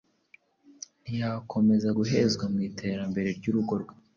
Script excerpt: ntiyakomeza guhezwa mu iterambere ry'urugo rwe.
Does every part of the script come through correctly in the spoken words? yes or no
yes